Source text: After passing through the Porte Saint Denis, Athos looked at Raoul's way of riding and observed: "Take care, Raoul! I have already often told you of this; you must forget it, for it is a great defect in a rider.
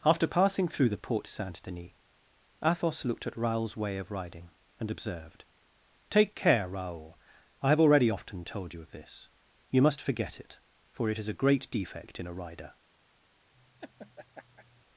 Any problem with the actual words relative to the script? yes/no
no